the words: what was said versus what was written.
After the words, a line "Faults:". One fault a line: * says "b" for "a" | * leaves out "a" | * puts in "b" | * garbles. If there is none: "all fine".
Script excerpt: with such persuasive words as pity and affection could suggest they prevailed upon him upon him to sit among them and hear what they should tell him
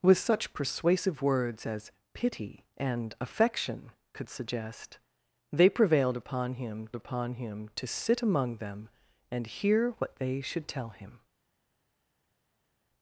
with such persuasive words as pity and affection could suggest they prevailed upon him upon him to sit among them and hear what they should tell him
Faults:
all fine